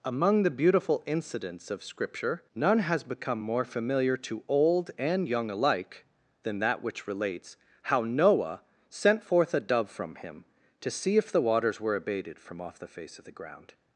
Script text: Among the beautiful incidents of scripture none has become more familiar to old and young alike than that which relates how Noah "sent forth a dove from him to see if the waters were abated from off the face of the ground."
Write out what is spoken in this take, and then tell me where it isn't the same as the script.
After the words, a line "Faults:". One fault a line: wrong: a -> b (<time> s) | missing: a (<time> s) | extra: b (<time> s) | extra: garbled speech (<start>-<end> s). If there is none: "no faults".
Among the beautiful incidents of scripture none has become more familiar to old and young alike than that which relates how Noah "sent forth a dove from him to see if the waters were abated from off the face of the ground."
Faults:
no faults